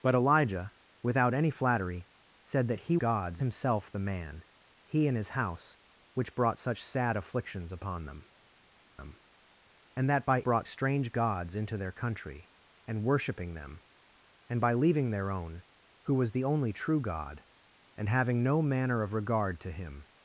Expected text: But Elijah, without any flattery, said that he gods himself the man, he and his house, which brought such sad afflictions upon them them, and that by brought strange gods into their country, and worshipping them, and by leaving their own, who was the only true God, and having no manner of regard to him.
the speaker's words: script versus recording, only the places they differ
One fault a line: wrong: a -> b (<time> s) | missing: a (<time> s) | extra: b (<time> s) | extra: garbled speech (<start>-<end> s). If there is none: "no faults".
no faults